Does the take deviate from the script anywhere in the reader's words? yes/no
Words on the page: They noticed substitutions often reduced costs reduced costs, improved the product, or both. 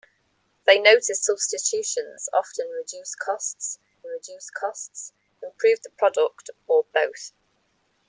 no